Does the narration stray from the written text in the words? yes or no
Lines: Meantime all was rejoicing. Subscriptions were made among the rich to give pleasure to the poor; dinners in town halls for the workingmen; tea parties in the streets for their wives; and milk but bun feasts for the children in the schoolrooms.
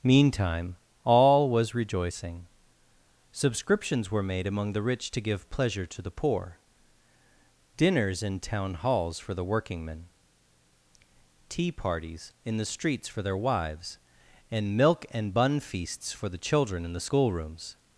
yes